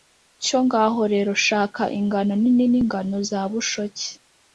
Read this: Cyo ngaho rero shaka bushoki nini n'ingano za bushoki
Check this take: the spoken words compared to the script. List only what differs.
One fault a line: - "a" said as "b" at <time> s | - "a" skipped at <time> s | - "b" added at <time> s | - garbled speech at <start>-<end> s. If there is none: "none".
- "bushoki" said as "ingano" at 2.0 s